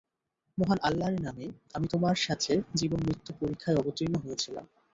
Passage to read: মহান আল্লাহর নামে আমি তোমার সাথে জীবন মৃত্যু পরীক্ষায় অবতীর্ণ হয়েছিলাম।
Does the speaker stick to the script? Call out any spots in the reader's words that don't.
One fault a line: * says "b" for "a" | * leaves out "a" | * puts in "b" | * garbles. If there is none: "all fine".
all fine